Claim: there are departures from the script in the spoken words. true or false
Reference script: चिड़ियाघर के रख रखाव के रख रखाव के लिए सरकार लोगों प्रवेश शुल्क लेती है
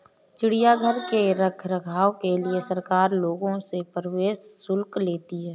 true